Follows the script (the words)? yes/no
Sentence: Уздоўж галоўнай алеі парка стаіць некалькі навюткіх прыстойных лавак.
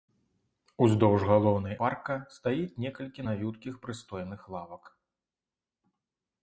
no